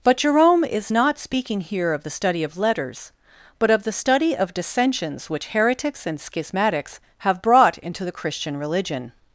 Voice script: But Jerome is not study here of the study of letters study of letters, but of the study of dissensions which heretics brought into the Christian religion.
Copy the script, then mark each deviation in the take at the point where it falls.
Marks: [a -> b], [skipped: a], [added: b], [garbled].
But Jerome is not [study -> speaking] here of the study of letters [skipped: study of letters,] but of the study of dissensions which heretics [added: and schismatics have] brought into the Christian religion.